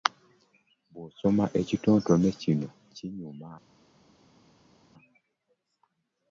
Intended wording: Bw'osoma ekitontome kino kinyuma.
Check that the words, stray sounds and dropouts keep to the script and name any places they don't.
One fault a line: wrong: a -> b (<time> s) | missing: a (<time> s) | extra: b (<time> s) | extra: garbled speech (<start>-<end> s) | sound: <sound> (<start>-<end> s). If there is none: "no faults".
no faults